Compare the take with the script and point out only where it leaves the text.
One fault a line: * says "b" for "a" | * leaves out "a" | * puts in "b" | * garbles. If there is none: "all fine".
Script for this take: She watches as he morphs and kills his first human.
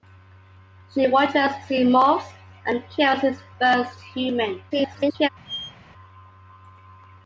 * garbles